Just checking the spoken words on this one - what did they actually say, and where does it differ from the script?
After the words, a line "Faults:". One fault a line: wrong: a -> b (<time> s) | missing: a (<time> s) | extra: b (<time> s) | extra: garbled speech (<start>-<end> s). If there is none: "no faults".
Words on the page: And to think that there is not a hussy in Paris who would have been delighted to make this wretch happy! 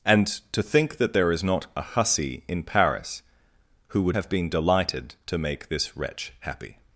And to think that there is not a hussy in Paris who would have been delighted to make this wretch happy!
Faults:
no faults